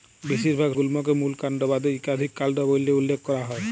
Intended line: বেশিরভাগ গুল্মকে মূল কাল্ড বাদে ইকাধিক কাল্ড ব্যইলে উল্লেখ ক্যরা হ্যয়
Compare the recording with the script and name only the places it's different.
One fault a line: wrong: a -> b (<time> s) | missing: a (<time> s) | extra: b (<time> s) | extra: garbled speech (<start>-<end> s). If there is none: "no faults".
no faults